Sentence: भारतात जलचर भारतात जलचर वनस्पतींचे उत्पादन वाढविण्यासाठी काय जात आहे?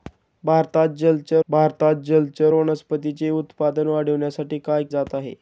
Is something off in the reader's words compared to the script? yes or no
no